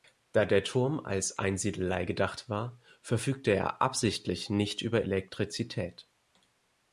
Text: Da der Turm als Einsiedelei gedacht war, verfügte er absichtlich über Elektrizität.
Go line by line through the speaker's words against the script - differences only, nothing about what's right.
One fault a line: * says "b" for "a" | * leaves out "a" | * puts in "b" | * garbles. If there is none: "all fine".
* puts in "nicht"